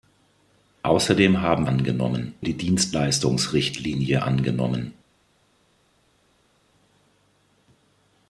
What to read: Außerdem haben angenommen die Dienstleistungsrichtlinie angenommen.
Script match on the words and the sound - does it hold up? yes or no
yes